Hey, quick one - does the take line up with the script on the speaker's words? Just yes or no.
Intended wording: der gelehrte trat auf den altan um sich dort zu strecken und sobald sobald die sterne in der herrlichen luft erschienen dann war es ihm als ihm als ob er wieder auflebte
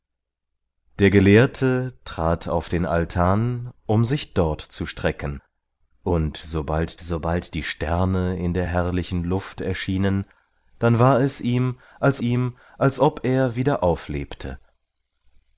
yes